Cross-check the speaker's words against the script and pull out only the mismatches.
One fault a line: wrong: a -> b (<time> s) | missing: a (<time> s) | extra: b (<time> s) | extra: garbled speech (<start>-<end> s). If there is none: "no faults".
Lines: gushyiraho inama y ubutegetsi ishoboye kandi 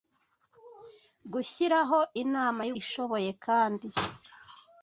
missing: ubutegetsi (2.7 s)